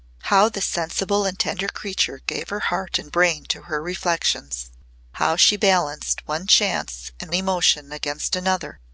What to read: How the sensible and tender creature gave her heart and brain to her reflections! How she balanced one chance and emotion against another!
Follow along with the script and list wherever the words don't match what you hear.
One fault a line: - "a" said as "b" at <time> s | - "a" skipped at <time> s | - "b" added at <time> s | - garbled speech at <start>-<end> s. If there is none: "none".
none